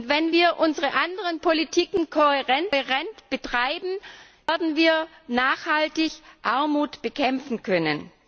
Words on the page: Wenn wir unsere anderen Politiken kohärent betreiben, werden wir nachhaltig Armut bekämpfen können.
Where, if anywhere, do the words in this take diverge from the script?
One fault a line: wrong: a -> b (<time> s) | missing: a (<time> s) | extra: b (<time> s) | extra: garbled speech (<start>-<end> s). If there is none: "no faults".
no faults